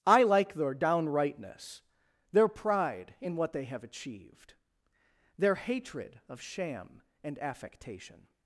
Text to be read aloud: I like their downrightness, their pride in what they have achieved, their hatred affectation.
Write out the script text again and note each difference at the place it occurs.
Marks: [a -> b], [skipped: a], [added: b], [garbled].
I like their downrightness, their pride in what they have achieved, their hatred [added: of sham and] affectation.